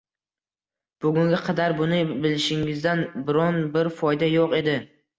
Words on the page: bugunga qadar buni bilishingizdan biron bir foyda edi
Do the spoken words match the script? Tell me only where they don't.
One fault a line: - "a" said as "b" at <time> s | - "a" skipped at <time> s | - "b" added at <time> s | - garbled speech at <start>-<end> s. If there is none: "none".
- "yo'q" added at 4.3 s